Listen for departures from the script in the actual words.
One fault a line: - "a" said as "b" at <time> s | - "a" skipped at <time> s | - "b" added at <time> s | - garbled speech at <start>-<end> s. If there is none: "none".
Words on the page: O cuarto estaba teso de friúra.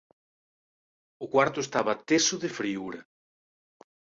none